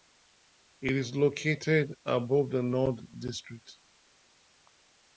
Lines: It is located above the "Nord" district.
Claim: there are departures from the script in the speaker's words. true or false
false